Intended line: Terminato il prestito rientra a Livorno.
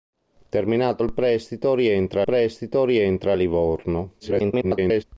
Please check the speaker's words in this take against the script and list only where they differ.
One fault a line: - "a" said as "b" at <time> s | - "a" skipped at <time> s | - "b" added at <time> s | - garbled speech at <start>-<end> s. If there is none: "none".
- "prestito rientra" added at 2.2 s
- garbled speech at 4.2-5.0 s